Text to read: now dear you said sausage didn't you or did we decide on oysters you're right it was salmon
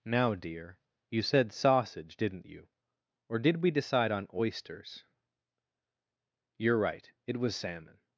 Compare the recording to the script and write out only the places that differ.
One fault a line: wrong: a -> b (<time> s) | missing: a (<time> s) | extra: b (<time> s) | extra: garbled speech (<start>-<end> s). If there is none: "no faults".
no faults